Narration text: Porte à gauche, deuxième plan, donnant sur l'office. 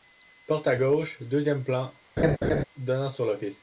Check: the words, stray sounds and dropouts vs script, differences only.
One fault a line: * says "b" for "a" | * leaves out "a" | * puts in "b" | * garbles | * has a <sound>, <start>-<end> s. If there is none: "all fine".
* has a laugh, 2.2-2.6 s